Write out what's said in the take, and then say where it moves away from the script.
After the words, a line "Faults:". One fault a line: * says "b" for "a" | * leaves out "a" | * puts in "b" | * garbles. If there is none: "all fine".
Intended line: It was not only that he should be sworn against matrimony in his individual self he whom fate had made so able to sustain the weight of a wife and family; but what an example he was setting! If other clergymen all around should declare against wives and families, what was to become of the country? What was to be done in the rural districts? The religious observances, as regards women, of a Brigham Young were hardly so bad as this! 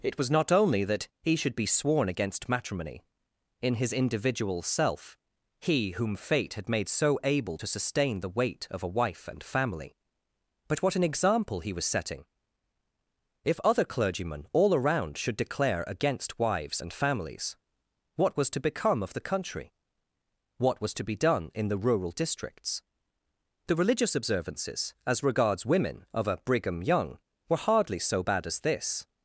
It was not only that he should be sworn against matrimony in his individual self he whom fate had made so able to sustain the weight of a wife and family; but what an example he was setting! If other clergymen all around should declare against wives and families, what was to become of the country? What was to be done in the rural districts? The religious observances, as regards women, of a Brigham Young were hardly so bad as this!
Faults:
all fine